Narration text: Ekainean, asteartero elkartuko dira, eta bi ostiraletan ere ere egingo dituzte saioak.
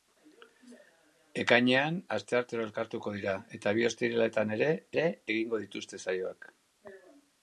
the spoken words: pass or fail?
pass